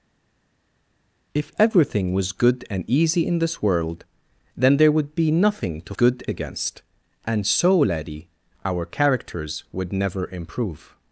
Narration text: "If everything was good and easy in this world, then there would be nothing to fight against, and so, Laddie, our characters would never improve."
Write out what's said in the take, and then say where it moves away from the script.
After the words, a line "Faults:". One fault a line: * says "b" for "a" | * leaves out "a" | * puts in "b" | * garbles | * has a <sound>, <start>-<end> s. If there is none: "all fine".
"If everything was good and easy in this world, then there would be nothing to good against, and so, Laddie, our characters would never improve."
Faults:
* says "good" for "fight"